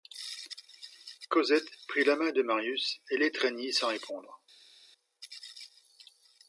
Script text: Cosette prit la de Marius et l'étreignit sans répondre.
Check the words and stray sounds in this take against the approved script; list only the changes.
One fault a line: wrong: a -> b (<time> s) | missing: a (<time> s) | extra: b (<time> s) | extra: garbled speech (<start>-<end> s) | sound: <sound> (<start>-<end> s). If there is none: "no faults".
extra: main (2.1 s)